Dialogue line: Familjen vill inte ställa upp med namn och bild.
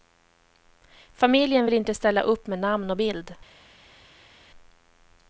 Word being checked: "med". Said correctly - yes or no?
yes